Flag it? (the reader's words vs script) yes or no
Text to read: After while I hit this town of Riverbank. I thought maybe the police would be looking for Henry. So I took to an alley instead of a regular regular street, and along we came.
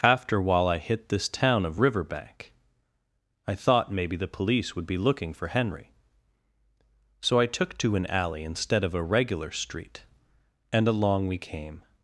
yes